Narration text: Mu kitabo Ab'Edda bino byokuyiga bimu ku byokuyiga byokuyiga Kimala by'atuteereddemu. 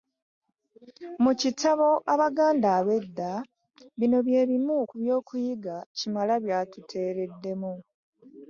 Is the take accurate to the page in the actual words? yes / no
no